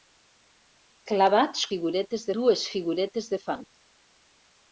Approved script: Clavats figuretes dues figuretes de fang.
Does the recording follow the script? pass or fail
pass